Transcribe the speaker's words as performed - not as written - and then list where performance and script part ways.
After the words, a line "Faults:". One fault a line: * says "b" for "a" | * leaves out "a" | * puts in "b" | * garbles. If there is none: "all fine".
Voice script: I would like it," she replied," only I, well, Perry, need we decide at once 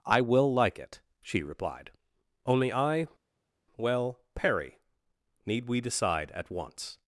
I will like it," she replied," only I, well, Perry, need we decide at once
Faults:
* says "will" for "would"